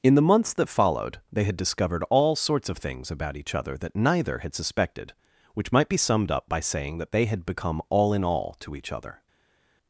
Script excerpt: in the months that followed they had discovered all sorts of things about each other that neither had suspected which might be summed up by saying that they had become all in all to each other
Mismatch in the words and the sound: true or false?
false